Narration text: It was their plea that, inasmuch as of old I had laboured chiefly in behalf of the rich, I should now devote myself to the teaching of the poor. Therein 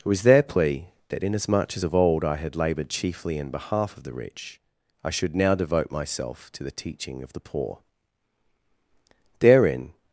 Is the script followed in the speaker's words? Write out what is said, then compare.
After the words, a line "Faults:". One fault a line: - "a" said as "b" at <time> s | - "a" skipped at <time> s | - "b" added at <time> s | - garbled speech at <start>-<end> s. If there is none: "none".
It was their plea that, inasmuch as of old I had laboured chiefly in behalf of the rich, I should now devote myself to the teaching of the poor. Therein
Faults:
none